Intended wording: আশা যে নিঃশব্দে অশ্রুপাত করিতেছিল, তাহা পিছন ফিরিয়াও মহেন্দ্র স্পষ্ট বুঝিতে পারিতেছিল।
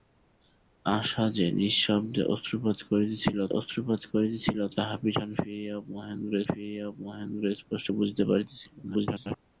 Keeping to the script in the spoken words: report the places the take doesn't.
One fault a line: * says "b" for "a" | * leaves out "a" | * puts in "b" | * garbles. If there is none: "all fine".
* puts in "অশ্রুপাত করিতেছিল"
* puts in "ফিরিয়াও মহেন্দ্র"
* garbles